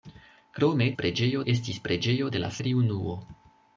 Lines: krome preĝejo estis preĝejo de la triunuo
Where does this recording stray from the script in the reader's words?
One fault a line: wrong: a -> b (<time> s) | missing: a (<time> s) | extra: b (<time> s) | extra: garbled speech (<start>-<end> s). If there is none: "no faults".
no faults